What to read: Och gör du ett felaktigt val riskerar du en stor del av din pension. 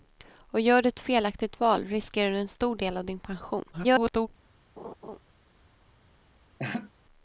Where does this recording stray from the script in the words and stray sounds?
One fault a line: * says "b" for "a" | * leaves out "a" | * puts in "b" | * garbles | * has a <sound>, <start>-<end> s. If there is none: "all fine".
* garbles
* has a laugh, 4.8-5.2 s
* has a laugh, 6.6-6.9 s